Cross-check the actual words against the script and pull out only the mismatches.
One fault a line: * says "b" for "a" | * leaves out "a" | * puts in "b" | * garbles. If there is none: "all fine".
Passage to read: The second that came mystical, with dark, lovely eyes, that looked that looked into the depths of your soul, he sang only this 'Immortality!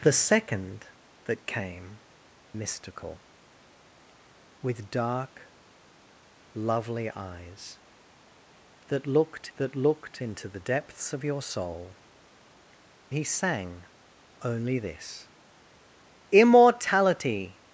all fine